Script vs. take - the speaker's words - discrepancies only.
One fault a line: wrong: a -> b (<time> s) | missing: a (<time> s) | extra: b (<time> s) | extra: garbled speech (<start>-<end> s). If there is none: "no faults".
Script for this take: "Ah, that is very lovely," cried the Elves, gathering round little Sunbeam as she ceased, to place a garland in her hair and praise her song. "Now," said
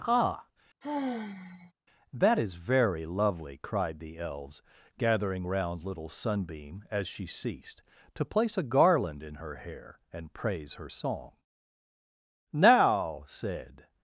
no faults